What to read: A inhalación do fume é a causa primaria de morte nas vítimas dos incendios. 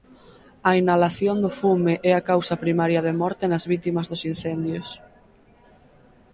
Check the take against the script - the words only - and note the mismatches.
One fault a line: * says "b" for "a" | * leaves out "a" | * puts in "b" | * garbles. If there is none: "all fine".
all fine